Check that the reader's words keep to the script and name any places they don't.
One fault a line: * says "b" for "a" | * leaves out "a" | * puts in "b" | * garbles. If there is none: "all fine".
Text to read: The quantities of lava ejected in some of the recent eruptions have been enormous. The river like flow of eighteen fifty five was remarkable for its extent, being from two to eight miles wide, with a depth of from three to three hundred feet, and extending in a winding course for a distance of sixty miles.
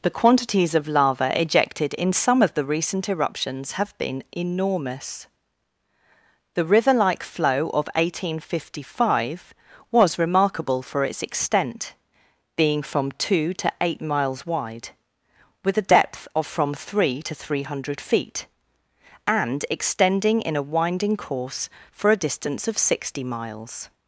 all fine